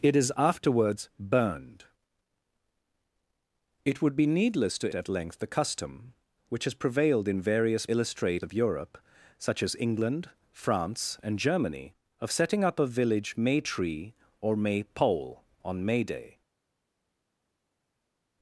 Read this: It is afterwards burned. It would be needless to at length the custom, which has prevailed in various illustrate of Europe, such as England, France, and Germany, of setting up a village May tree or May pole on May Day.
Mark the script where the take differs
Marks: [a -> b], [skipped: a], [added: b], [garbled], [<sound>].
It is afterwards burned. It would be needless to at length the custom, which has prevailed in various illustrate of Europe, such as England, France, and Germany, of setting up a village May tree or May pole on May Day.